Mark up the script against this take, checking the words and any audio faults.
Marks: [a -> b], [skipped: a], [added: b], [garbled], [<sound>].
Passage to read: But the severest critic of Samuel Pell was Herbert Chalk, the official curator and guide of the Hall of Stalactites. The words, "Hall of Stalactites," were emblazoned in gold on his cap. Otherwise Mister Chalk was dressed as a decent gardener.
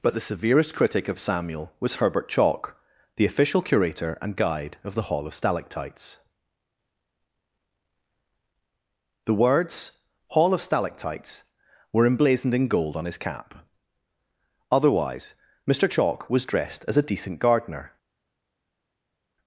But the severest critic of Samuel [skipped: Pell] was Herbert Chalk, the official curator and guide of the Hall of Stalactites. The words, "Hall of Stalactites," were emblazoned in gold on his cap. Otherwise Mister Chalk was dressed as a decent gardener.